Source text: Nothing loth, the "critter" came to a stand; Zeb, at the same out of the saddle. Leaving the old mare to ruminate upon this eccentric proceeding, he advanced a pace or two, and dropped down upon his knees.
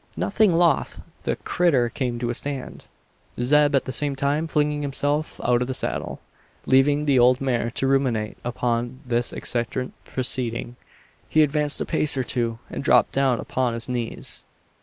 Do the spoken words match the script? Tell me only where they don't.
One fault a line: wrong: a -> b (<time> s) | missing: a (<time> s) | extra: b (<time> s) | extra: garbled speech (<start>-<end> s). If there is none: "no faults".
extra: time flinging himself (4.1 s)